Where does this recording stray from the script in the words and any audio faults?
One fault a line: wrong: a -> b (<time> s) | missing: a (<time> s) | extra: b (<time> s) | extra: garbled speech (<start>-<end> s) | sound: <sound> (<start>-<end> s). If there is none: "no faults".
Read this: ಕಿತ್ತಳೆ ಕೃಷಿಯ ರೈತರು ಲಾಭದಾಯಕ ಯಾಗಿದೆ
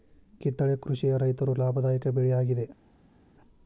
extra: ಬೆಳೆ (2.1 s)